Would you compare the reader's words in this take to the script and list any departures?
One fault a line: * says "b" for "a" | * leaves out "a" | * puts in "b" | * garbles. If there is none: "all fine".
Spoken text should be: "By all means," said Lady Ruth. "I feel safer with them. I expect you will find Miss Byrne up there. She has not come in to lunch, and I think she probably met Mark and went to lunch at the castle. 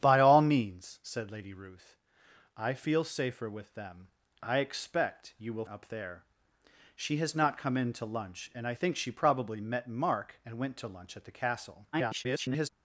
* leaves out "find Miss Byrne"
* garbles